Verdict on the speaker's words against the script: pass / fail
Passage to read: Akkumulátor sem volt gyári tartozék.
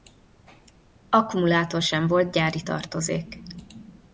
pass